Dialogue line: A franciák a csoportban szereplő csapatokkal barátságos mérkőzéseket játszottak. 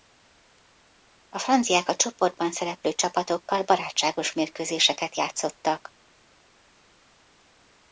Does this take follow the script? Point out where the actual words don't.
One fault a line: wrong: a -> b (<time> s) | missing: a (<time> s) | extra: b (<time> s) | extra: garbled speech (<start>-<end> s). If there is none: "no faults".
no faults